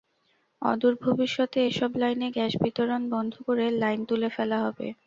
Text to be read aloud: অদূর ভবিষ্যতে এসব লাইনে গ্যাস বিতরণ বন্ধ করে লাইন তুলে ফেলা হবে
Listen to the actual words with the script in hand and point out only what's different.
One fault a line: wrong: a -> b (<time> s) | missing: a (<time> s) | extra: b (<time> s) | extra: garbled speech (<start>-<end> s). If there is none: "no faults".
no faults